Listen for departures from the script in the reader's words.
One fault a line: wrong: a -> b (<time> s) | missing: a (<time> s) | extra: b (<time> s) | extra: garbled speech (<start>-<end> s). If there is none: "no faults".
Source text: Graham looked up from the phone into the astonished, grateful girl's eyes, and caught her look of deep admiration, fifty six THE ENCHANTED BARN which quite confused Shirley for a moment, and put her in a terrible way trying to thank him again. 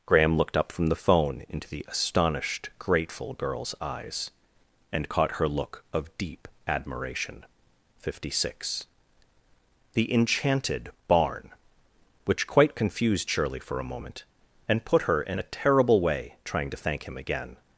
no faults